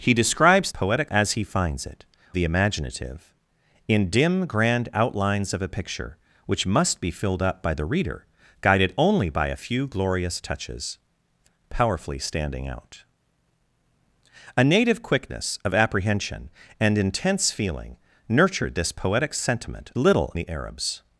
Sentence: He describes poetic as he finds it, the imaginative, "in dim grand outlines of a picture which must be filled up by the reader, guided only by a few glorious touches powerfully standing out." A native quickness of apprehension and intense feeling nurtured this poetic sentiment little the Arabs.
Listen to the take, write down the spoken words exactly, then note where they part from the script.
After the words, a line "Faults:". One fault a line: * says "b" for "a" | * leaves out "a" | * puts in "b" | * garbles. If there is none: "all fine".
He describes poetic as he finds it, the imaginative, "in dim grand outlines of a picture which must be filled up by the reader, guided only by a few glorious touches powerfully standing out." A native quickness of apprehension and intense feeling nurtured this poetic sentiment little the Arabs.
Faults:
all fine